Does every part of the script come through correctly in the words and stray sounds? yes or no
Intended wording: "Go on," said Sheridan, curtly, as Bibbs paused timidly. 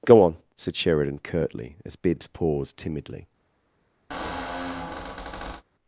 no